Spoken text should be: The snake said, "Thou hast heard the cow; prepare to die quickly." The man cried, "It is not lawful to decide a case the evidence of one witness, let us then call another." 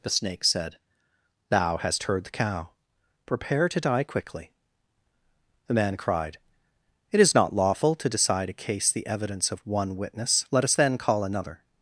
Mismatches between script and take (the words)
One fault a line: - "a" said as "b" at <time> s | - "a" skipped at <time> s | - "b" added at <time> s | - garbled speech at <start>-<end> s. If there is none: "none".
none